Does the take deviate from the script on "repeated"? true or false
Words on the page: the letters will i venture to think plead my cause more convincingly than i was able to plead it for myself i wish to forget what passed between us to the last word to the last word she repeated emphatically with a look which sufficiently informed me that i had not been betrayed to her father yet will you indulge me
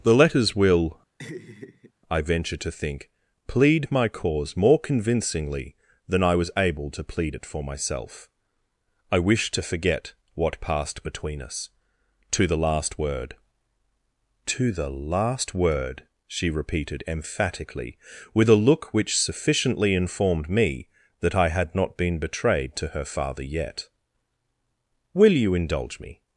false